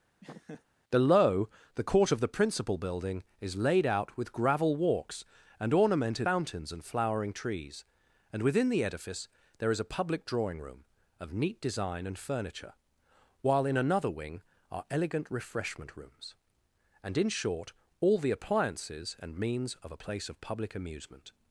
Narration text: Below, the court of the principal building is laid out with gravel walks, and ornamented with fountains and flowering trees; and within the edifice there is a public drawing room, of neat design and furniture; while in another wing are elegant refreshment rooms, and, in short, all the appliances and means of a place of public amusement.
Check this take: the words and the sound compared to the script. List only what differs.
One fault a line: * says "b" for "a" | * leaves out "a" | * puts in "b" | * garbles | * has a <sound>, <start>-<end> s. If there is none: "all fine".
* has a laugh, 0.2-0.6 s
* leaves out "with"